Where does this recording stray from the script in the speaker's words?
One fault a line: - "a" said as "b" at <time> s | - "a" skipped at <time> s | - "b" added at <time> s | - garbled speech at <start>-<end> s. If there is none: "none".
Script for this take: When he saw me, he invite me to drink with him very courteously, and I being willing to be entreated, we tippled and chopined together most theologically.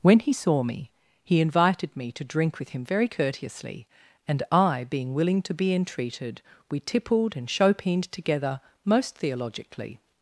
- "invite" said as "invited" at 1.4 s